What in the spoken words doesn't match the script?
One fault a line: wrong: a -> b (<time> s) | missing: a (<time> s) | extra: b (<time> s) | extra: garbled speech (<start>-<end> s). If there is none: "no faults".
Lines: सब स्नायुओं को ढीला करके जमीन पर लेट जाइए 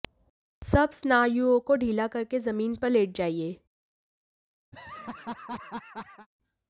no faults